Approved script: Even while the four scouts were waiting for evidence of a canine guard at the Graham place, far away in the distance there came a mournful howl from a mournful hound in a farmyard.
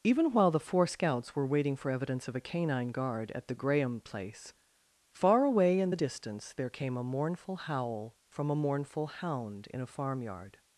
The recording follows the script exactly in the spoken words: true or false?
true